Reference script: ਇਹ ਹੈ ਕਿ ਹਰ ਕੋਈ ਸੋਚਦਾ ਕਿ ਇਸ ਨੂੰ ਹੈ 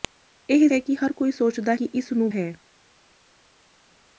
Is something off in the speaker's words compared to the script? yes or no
no